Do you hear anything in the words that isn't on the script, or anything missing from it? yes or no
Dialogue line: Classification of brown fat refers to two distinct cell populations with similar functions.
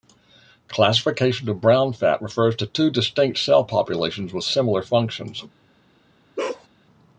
no